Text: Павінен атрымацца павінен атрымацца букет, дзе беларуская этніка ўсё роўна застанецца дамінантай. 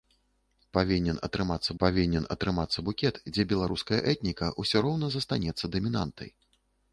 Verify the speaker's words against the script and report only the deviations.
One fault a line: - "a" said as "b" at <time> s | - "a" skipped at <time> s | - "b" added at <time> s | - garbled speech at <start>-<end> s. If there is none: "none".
none